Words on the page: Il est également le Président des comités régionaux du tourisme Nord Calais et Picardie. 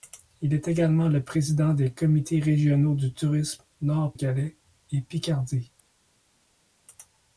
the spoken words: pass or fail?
pass